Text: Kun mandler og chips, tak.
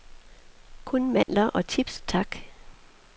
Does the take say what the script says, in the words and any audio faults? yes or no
no